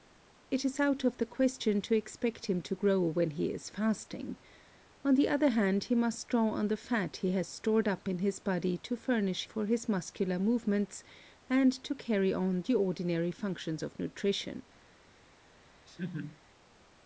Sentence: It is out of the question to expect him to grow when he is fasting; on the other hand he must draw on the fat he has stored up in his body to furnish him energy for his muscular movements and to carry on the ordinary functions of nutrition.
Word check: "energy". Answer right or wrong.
wrong